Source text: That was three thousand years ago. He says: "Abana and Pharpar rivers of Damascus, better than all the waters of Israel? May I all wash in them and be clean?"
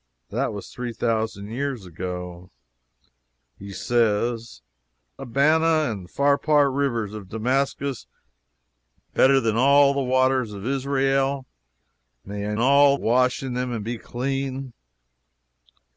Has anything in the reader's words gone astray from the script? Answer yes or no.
no